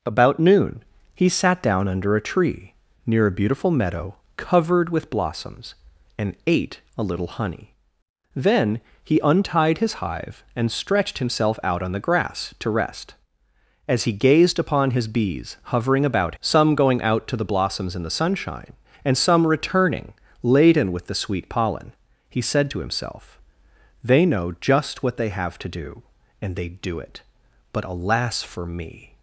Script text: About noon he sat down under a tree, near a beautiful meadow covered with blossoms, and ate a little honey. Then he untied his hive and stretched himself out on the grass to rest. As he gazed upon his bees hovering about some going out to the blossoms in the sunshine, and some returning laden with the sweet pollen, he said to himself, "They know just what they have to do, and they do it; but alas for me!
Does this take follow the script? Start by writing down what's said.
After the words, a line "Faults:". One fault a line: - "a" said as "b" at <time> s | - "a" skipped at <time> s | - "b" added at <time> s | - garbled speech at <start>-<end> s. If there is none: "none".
About noon he sat down under a tree, near a beautiful meadow covered with blossoms, and ate a little honey. Then he untied his hive and stretched himself out on the grass to rest. As he gazed upon his bees hovering about some going out to the blossoms in the sunshine, and some returning laden with the sweet pollen, he said to himself, "They know just what they have to do, and they do it; but alas for me!
Faults:
none